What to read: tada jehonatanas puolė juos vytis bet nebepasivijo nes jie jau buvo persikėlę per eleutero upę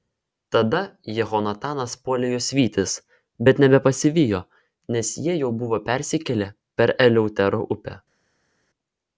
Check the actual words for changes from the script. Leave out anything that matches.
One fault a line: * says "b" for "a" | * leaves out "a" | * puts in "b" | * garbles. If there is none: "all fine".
all fine